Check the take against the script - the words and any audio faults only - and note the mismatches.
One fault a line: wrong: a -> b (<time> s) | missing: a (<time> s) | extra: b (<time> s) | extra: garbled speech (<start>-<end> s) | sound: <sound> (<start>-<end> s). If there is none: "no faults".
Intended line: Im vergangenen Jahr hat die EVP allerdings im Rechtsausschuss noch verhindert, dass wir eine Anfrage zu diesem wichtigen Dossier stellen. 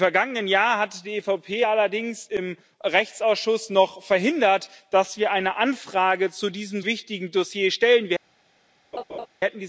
sound: laugh (8.9-9.3 s)